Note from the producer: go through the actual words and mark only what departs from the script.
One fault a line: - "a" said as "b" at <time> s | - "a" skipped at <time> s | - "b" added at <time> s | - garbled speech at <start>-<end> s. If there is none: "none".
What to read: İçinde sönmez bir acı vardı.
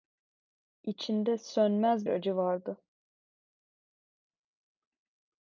- "bir" skipped at 2.1 s